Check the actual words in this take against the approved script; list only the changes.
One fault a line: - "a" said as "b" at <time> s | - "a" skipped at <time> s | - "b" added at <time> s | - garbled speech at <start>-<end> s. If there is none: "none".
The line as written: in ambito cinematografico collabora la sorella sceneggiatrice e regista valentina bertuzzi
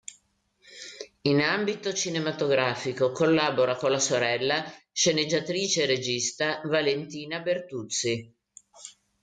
- "con" added at 3.7 s